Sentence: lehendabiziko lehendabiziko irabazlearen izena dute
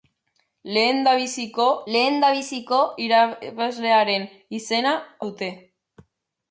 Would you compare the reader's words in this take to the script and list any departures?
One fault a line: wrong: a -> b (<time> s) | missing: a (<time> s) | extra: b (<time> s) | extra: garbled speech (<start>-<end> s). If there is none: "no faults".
no faults